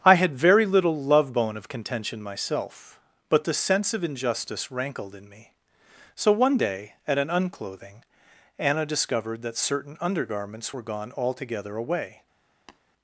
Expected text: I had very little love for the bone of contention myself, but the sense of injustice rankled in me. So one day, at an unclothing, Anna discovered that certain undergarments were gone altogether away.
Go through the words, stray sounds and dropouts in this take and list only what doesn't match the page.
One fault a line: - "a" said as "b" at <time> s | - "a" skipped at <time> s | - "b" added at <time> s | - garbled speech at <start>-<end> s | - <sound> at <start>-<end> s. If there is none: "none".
- "for the" skipped at 1.3 s
- tap at 12.7-12.8 s